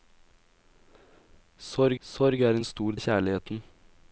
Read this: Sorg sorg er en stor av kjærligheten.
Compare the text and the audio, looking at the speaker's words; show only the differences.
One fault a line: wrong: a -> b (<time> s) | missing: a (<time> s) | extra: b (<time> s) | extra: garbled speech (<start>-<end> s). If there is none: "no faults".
no faults